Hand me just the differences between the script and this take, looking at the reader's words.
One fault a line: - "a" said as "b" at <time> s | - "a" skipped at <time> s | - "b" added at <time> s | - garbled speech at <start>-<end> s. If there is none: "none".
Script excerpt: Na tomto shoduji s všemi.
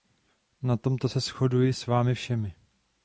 - "se" added at 1.1 s
- "vámi" added at 1.9 s